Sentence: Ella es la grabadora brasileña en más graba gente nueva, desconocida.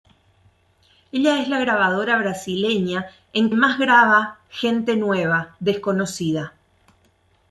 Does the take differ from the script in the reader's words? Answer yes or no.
no